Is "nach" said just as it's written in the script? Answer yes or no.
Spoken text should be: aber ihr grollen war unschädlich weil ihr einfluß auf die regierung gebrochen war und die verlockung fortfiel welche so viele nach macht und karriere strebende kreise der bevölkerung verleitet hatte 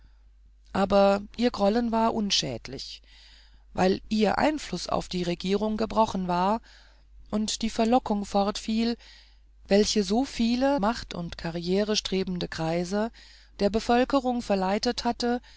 no